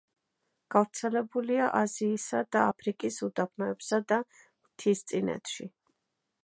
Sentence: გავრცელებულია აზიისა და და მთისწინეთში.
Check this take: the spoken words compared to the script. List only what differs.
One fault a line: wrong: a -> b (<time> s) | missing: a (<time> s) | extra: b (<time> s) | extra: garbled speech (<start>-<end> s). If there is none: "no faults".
extra: აფრიკის უდაბნოებსა (2.7 s)